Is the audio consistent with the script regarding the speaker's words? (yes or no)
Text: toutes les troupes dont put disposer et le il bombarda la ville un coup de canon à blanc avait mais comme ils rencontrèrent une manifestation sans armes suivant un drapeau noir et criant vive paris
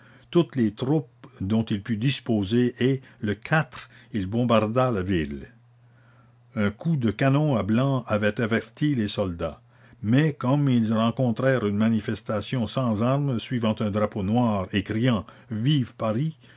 no